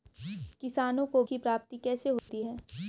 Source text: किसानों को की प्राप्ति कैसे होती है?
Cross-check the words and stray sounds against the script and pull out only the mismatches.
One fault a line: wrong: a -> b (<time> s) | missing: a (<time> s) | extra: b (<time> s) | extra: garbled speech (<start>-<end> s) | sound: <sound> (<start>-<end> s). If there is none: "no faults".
sound: dropout (2.2-2.3 s)